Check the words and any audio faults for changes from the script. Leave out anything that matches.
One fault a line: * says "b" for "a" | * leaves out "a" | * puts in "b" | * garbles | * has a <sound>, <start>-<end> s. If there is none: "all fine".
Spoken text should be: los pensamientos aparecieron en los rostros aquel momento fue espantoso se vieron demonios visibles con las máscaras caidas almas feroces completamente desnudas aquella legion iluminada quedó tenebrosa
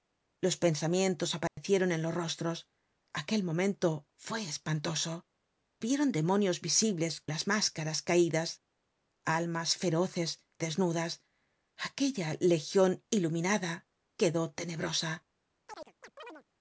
* has a dropout, 1.5-1.6 s
* leaves out "se"
* leaves out "con"
* leaves out "completamente"
* has a chirp, 15.7-16.4 s